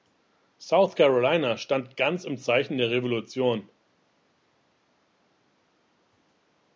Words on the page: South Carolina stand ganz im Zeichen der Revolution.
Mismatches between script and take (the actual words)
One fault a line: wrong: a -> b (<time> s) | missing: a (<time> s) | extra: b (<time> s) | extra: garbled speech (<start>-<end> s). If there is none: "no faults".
no faults